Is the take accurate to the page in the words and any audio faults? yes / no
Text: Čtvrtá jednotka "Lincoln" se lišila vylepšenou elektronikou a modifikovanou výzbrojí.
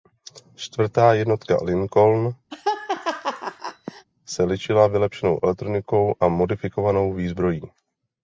no